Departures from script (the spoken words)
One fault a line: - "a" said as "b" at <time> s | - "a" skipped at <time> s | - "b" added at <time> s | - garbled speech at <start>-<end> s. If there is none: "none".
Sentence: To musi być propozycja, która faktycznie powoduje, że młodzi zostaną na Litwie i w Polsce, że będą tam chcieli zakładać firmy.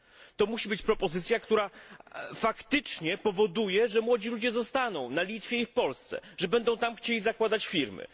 - "ludzie" added at 4.3 s